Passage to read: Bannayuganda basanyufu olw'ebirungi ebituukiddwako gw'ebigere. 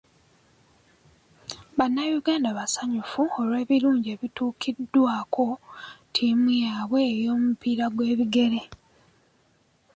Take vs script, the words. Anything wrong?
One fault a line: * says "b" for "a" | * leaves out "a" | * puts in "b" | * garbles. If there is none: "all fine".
* puts in "ttiimu yaabwe ey'omupiira"